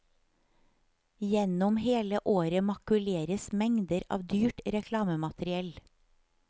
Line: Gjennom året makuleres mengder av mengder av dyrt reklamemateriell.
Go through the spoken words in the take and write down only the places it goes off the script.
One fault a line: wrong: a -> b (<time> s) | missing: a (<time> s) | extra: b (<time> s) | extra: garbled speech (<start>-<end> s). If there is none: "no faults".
extra: hele (1.8 s)
missing: mengder av (4.2 s)